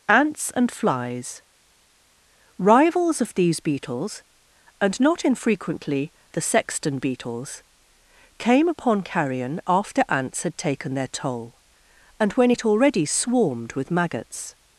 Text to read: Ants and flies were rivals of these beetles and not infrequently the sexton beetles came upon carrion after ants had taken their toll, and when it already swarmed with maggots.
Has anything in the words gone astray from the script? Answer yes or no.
yes